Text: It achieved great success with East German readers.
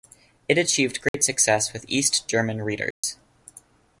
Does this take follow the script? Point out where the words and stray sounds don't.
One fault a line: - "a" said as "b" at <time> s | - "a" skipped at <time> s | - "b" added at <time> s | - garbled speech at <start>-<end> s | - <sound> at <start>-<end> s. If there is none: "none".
- dropout at 1.1-1.1 s
- dropout at 2.9-3.0 s